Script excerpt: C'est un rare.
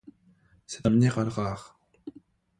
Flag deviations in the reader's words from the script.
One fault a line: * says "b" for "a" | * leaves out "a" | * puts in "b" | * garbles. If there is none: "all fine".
* puts in "minéral"